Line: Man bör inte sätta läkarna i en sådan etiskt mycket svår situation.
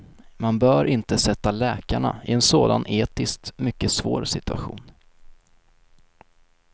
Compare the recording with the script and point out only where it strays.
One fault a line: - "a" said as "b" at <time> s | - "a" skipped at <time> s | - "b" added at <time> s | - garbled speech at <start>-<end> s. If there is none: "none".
none